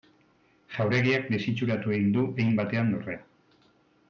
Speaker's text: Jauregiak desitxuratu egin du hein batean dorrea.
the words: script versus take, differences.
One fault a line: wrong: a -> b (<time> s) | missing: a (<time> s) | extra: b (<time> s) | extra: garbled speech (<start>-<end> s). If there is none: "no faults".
no faults